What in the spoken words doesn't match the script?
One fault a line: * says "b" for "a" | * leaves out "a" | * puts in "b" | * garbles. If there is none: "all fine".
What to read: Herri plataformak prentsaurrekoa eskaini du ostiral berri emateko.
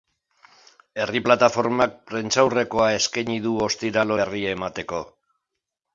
all fine